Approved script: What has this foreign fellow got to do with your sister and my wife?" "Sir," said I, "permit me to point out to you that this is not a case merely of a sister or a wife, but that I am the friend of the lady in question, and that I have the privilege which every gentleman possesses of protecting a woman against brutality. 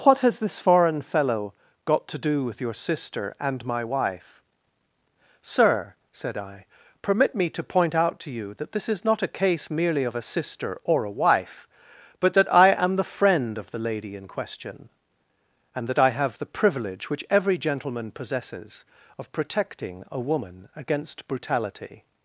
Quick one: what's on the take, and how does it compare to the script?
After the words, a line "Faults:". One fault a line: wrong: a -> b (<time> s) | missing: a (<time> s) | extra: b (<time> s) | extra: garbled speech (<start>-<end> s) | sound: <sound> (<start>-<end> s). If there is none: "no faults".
What has this foreign fellow got to do with your sister and my wife?" "Sir," said I, "permit me to point out to you that this is not a case merely of a sister or a wife, but that I am the friend of the lady in question, and that I have the privilege which every gentleman possesses of protecting a woman against brutality.
Faults:
no faults